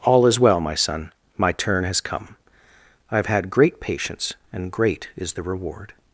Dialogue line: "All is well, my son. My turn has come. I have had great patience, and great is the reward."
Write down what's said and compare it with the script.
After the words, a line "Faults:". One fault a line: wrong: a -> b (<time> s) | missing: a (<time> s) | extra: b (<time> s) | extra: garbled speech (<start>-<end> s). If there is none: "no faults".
"All is well, my son. My turn has come. I have had great patience, and great is the reward."
Faults:
no faults